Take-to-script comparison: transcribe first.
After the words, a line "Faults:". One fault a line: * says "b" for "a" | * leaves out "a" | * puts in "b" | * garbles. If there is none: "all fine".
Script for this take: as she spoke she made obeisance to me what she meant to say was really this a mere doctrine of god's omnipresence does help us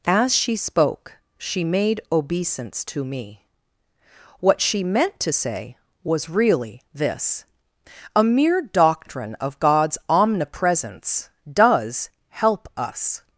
as she spoke she made obeisance to me what she meant to say was really this a mere doctrine of god's omnipresence does help us
Faults:
all fine